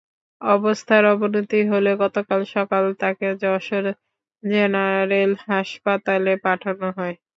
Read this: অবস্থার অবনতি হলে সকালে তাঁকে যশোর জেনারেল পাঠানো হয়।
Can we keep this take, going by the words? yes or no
no